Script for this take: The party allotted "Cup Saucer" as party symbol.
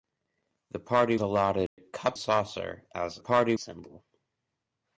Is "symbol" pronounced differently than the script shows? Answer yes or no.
no